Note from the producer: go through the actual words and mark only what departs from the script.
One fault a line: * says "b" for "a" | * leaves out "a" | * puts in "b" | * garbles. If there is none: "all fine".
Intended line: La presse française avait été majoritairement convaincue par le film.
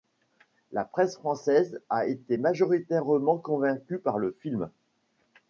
* says "a" for "avait"